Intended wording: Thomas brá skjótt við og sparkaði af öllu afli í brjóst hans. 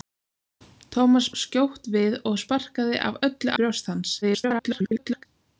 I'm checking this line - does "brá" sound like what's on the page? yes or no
no